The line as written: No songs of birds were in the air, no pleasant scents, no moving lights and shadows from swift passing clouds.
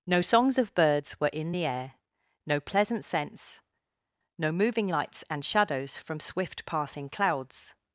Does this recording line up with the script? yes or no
yes